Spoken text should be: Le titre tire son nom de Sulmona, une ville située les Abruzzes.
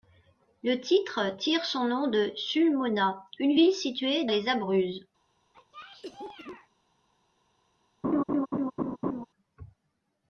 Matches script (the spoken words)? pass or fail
pass